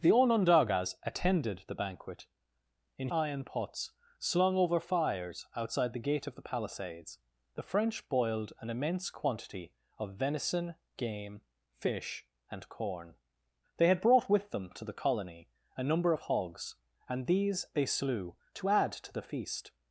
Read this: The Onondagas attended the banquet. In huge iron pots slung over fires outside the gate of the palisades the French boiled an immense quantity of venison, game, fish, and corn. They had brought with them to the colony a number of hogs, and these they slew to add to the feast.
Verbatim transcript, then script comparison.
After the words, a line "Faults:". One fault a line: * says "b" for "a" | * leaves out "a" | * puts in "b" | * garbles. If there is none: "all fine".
The Onondagas attended the banquet. In iron pots slung over fires outside the gate of the palisades the French boiled an immense quantity of venison, game, fish, and corn. They had brought with them to the colony a number of hogs, and these they slew to add to the feast.
Faults:
* leaves out "huge"